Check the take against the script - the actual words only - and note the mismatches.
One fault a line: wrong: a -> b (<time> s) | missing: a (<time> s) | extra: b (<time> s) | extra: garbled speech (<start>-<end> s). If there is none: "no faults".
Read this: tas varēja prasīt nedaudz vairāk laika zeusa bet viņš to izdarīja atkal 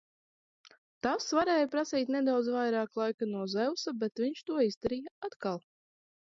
extra: no (3.4 s)